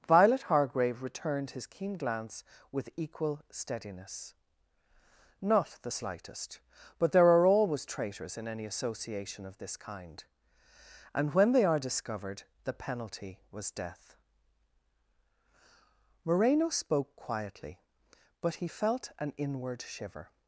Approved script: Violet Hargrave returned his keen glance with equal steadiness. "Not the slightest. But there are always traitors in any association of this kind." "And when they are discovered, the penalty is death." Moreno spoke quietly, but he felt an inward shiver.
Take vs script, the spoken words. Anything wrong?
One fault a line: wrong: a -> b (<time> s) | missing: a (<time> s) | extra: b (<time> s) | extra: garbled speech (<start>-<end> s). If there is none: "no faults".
wrong: is -> was (13.5 s)